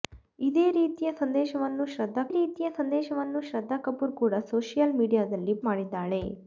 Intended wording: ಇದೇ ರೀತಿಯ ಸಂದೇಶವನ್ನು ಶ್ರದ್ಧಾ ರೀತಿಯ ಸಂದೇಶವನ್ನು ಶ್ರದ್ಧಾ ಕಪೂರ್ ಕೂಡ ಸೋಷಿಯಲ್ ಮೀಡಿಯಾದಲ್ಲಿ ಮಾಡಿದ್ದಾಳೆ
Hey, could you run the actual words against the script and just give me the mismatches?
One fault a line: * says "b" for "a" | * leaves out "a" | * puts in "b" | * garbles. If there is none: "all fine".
all fine